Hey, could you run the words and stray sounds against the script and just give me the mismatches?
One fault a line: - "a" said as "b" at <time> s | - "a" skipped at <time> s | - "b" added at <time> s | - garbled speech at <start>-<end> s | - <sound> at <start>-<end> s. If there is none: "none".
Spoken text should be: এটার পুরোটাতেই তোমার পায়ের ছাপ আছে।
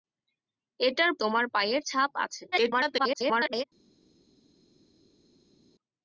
- "পুরোটাতেই" skipped at 1.1 s
- garbled speech at 2.5-3.6 s